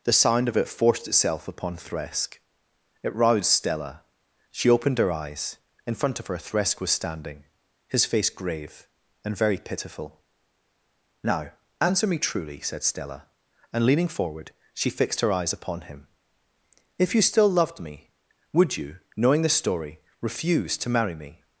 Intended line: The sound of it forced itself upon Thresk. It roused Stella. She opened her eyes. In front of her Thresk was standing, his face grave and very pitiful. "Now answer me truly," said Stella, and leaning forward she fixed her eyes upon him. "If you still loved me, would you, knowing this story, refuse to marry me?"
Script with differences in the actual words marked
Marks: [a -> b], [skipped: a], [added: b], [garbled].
The sound of it forced itself upon Thresk. It roused Stella. She opened her eyes. In front of her Thresk was standing, his face grave and very pitiful. "Now answer me truly," said Stella, and leaning forward she fixed her eyes upon him. "If you still loved me, would you, knowing [this -> the] story, refuse to marry me?"